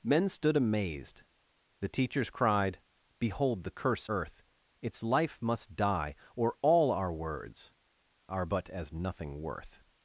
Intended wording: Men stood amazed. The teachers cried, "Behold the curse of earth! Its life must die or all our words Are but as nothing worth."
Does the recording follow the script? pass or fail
fail